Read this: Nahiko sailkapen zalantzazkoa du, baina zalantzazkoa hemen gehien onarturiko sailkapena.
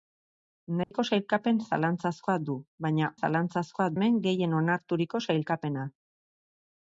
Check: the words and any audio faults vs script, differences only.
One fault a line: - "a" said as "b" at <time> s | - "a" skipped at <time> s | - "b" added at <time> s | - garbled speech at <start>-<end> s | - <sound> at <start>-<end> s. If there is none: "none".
- dropout at 0.8-0.9 s